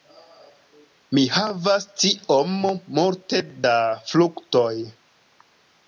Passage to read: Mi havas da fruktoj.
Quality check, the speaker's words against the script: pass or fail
fail